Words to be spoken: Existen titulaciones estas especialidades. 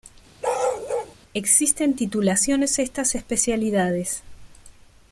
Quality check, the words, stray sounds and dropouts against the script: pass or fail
fail